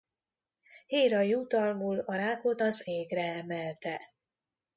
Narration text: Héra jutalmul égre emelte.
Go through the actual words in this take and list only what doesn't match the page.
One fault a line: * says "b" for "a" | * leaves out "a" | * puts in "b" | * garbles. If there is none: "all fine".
* puts in "a rákot az"